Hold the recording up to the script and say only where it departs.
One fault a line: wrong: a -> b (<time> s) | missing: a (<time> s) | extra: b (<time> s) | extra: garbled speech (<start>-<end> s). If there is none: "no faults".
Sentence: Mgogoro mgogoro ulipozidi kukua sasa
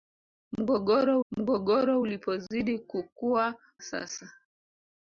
no faults